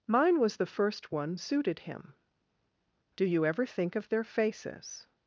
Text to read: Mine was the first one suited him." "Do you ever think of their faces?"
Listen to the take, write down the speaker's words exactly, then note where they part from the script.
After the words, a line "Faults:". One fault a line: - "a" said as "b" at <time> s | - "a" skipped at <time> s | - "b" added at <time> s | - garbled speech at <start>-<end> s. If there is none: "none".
Mine was the first one suited him." "Do you ever think of their faces?"
Faults:
none